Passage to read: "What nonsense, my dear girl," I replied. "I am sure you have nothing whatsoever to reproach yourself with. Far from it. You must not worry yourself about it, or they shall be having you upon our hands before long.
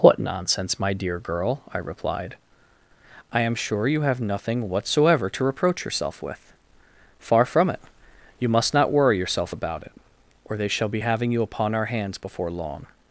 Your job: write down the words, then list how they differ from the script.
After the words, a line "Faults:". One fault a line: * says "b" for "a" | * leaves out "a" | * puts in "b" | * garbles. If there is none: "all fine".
"What nonsense, my dear girl," I replied. "I am sure you have nothing whatsoever to reproach yourself with. Far from it. You must not worry yourself about it, or they shall be having you upon our hands before long.
Faults:
all fine